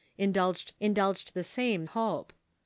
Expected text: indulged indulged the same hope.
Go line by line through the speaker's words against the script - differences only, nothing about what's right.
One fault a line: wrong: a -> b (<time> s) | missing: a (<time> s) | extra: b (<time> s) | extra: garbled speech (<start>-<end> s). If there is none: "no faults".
no faults